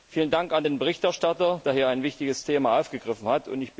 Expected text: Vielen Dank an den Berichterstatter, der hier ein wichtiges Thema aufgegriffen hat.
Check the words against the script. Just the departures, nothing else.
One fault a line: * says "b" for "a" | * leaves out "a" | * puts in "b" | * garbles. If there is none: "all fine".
all fine